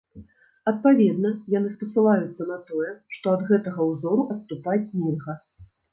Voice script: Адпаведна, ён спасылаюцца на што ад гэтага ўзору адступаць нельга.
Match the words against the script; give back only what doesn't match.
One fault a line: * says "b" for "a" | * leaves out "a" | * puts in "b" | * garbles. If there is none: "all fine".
* says "яны" for "ён"
* puts in "тое"